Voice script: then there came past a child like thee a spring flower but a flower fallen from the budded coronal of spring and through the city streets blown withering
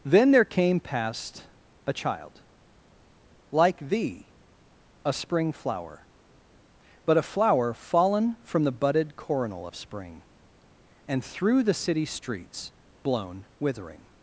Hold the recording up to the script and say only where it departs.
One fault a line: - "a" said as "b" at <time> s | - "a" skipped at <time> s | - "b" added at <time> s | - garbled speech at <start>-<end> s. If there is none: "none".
none